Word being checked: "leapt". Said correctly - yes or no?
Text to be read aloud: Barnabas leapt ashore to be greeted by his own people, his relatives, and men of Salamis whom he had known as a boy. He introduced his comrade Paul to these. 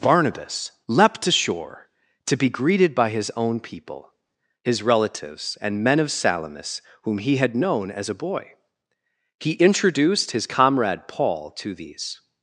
yes